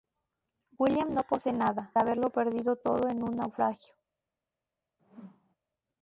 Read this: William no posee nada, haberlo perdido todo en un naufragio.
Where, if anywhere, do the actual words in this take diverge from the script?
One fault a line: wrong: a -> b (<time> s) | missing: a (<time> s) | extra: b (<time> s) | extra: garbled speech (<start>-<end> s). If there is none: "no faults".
no faults